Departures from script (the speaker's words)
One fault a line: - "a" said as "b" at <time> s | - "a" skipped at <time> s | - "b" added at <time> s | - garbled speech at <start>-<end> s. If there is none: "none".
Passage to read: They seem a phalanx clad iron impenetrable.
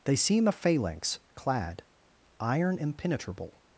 none